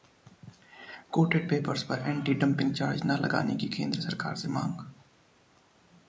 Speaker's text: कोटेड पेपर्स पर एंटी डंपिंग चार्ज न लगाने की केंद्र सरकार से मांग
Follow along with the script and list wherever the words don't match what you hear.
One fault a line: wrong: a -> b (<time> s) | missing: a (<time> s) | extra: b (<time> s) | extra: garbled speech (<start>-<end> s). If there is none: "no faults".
no faults